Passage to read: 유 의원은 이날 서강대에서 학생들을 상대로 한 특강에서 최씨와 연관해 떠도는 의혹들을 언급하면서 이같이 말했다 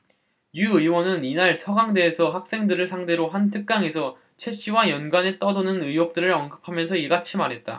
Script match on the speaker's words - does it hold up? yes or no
yes